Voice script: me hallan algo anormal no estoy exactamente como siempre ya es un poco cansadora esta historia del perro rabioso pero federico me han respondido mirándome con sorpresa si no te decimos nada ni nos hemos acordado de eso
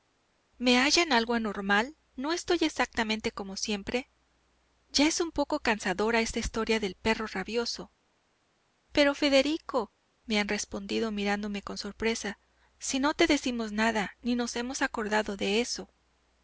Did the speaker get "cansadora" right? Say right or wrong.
right